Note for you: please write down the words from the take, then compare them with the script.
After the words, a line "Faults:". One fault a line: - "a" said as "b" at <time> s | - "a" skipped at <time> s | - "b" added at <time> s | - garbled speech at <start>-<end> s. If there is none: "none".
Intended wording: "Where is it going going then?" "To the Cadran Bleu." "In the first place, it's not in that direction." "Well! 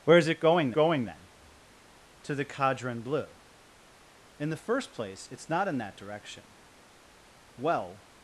"Where is it going going then?" "To the Cadran Bleu." "In the first place, it's not in that direction." "Well!
Faults:
none